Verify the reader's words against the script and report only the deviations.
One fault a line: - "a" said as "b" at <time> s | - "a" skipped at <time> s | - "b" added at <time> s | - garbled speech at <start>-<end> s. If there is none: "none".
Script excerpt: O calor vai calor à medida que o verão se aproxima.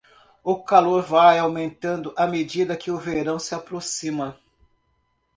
- "calor" said as "aumentando" at 1.4 s